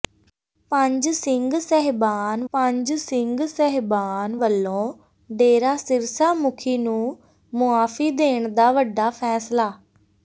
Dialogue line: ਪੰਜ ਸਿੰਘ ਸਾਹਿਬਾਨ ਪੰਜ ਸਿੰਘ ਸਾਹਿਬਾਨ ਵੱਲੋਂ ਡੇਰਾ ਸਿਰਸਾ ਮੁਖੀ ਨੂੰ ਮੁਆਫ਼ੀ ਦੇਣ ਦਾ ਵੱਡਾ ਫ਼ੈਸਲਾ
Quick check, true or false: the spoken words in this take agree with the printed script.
true